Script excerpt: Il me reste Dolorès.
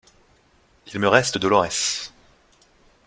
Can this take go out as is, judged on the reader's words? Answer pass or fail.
pass